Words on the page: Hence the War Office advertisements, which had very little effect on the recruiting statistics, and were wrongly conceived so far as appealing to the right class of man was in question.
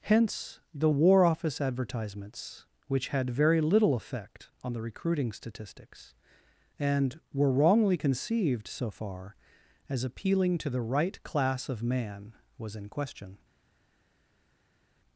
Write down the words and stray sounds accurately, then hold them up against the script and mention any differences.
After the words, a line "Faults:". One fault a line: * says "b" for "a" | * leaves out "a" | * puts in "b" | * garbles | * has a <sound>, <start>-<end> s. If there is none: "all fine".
Hence the War Office advertisements, which had very little effect on the recruiting statistics, and were wrongly conceived so far as appealing to the right class of man was in question.
Faults:
all fine